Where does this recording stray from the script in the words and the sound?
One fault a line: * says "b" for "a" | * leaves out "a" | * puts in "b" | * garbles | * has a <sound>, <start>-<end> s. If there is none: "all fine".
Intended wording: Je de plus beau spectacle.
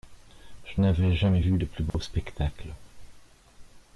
* puts in "n'avais jamais vu"
* has a dropout, 1.9-1.9 s